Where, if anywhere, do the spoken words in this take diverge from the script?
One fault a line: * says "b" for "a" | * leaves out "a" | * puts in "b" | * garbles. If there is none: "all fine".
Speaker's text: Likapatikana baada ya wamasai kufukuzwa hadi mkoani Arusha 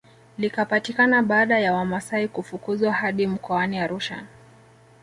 all fine